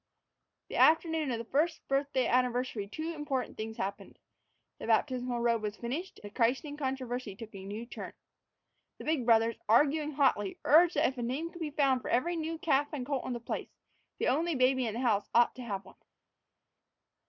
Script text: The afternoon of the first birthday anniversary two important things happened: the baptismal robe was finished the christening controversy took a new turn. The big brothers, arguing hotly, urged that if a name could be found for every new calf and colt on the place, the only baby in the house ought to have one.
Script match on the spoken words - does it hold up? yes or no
yes